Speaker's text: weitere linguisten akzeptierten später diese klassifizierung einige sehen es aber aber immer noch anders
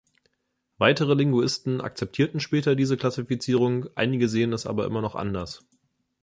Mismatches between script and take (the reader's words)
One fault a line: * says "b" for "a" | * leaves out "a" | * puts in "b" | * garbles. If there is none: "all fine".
* leaves out "aber"